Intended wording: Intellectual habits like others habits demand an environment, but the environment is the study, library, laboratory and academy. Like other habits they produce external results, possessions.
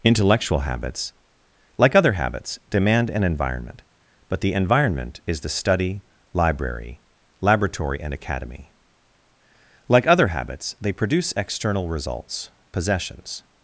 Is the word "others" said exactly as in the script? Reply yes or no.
no